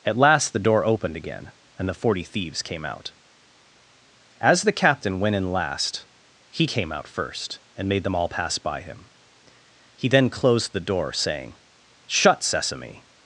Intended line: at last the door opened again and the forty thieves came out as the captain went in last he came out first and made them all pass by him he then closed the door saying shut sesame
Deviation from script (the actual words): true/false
false